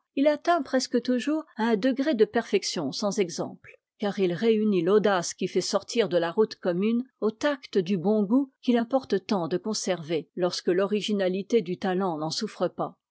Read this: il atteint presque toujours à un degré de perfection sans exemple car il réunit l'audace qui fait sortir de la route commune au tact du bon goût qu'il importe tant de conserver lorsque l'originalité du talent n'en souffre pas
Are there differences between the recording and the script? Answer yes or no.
no